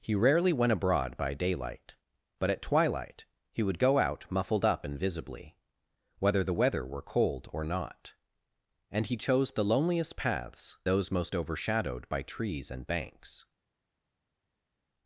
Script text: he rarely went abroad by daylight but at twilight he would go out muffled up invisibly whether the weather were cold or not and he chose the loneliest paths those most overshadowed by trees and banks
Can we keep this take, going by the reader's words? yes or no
yes